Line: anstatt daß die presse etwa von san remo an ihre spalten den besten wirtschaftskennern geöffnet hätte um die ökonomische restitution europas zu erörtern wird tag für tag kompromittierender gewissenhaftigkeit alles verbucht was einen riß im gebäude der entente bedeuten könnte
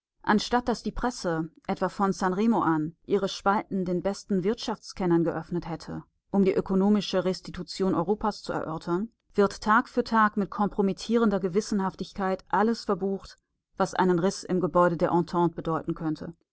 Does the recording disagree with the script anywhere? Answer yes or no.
yes